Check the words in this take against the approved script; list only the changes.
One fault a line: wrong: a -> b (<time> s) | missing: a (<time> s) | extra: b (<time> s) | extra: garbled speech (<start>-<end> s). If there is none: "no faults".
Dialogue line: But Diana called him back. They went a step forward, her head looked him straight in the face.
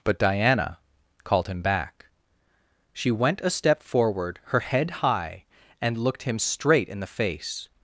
wrong: They -> She (2.9 s)
extra: high and (5.0 s)